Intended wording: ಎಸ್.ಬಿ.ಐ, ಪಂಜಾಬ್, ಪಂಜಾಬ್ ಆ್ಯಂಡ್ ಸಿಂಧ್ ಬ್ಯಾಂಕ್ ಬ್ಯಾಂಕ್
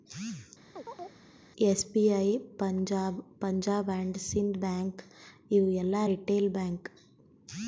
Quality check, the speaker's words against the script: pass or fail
fail